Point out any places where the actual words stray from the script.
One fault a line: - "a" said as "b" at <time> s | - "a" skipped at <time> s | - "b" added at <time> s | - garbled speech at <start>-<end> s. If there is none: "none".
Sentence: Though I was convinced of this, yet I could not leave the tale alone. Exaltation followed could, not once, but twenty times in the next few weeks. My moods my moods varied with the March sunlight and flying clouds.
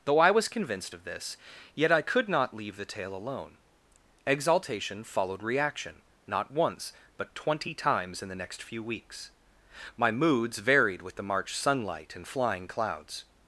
- "could" said as "reaction" at 5.4 s
- "my moods" skipped at 10.6 s